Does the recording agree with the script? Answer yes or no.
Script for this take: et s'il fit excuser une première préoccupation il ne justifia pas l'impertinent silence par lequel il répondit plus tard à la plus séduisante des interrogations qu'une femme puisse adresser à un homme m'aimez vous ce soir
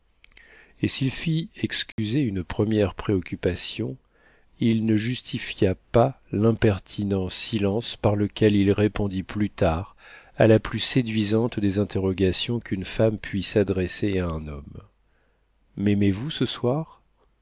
yes